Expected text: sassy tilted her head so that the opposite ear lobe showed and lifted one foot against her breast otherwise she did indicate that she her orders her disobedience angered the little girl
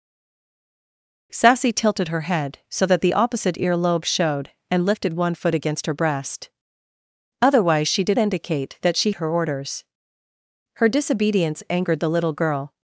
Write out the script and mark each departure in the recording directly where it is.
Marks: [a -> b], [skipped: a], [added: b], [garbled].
sassy tilted her head so that the opposite ear lobe showed and lifted one foot against her breast otherwise she did indicate that she her orders her disobedience angered the little girl